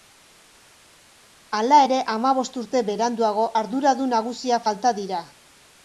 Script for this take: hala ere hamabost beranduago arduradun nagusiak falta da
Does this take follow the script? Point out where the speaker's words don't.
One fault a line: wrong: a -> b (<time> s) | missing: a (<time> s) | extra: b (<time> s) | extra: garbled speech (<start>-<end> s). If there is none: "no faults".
extra: urte (2.6 s)
wrong: da -> dira (5.0 s)